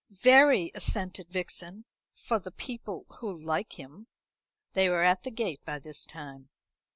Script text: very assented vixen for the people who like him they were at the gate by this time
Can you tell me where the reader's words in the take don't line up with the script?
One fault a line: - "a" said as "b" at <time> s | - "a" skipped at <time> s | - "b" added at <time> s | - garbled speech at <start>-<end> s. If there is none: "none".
none